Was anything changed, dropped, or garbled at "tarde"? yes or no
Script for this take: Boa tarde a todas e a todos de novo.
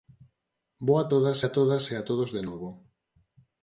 yes